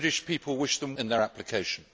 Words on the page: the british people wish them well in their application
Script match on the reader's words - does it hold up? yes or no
no